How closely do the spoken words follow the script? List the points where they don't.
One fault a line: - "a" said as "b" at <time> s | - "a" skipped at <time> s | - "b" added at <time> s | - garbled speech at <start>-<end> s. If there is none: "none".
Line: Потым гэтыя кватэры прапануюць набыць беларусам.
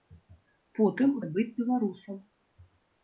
- "гэтыя кватэры прапануюць" skipped at 1.1 s